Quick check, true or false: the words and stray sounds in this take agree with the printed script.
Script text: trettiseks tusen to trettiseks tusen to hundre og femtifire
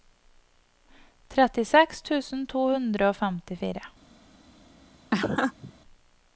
false